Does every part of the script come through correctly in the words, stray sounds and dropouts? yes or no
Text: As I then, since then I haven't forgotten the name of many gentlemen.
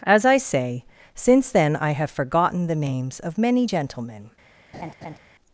no